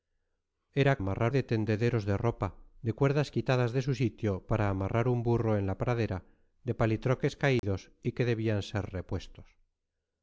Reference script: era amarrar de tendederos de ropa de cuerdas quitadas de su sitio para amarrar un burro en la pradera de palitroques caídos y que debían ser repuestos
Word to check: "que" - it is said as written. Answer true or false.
true